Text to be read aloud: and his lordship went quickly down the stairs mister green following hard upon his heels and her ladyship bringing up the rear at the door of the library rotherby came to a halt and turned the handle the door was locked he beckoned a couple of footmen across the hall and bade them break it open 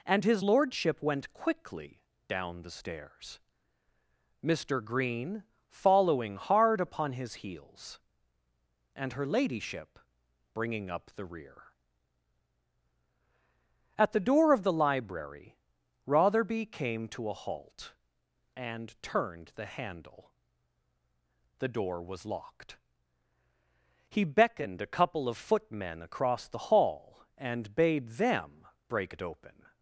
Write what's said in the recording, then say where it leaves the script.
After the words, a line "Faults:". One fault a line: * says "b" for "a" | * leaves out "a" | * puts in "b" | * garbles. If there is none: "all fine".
and his lordship went quickly down the stairs mister green following hard upon his heels and her ladyship bringing up the rear at the door of the library rotherby came to a halt and turned the handle the door was locked he beckoned a couple of footmen across the hall and bade them break it open
Faults:
all fine